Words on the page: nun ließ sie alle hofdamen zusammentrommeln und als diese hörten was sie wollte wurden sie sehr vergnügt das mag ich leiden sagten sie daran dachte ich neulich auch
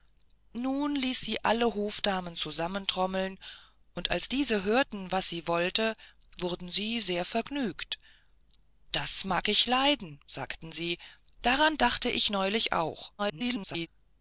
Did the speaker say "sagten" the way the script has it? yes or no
yes